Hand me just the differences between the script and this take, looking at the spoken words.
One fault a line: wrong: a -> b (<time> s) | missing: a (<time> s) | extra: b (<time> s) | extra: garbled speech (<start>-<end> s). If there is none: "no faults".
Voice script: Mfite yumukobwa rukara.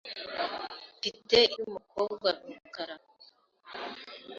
no faults